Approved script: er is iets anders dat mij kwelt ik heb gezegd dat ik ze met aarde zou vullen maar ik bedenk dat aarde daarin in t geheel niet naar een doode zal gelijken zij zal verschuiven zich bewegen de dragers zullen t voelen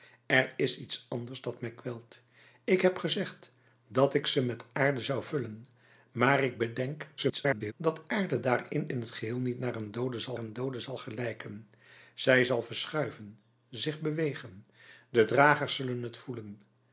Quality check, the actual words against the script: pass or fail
fail